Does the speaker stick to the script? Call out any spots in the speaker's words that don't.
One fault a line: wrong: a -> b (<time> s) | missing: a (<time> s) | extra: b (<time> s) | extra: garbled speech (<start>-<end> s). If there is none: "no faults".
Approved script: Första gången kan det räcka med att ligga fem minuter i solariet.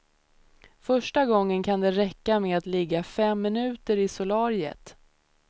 no faults